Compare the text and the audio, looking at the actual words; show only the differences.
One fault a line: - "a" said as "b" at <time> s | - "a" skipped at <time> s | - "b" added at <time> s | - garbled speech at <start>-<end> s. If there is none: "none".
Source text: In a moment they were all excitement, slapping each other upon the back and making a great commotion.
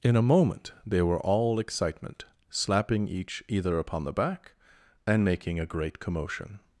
- "other" said as "either" at 3.5 s